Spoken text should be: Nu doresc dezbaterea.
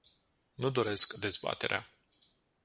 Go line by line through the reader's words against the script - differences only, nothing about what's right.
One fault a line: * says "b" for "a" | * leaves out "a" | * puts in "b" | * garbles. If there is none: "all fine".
all fine